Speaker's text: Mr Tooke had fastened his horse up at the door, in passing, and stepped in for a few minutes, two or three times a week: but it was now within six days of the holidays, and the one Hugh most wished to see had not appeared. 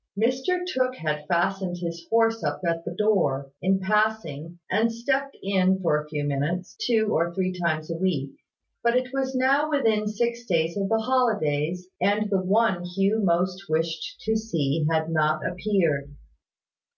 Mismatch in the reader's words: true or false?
false